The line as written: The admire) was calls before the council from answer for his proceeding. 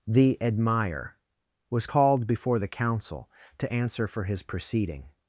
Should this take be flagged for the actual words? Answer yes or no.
yes